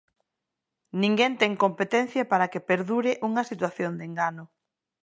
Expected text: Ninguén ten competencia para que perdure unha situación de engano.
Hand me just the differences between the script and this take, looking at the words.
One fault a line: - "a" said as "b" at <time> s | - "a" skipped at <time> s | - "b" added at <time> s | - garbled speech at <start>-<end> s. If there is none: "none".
none